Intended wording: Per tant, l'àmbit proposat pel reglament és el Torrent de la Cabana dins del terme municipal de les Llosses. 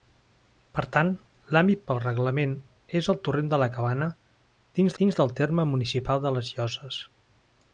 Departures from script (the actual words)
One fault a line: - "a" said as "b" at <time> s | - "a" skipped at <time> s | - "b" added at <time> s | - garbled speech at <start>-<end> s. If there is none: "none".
- "proposat" skipped at 1.8 s
- "dins" added at 5.0 s